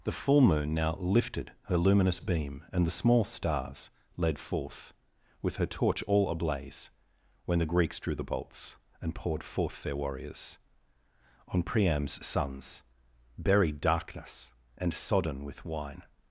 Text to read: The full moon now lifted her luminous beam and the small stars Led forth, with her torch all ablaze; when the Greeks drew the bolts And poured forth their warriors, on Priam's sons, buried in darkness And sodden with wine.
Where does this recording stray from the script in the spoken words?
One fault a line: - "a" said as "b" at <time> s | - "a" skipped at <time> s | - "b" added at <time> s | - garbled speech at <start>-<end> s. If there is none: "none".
- "in" skipped at 13.8 s